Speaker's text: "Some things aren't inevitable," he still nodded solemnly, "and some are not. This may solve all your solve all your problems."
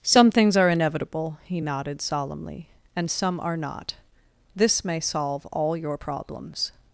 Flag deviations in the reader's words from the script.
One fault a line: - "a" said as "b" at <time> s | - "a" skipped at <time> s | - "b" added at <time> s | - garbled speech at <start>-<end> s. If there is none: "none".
- "aren't" said as "are" at 0.6 s
- "still" skipped at 1.6 s
- "solve all your" skipped at 6.0 s